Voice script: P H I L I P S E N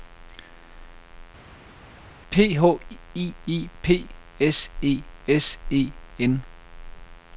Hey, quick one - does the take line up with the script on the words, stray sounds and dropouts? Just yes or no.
no